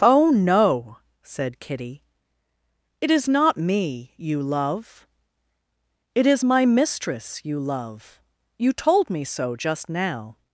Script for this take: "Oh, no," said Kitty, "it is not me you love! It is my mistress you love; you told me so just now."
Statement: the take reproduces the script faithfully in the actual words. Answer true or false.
true